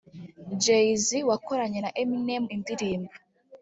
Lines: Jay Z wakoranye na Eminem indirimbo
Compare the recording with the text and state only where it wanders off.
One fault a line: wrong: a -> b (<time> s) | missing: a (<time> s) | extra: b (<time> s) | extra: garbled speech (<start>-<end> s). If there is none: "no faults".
no faults